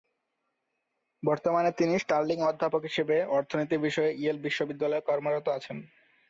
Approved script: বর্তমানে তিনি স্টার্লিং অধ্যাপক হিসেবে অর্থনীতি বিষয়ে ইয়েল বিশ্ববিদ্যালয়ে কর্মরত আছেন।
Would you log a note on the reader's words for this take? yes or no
no